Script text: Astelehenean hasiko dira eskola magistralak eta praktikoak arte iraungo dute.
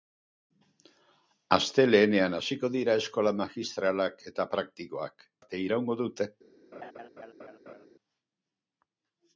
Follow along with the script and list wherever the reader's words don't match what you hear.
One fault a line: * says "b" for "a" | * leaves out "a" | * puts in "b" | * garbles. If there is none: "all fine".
all fine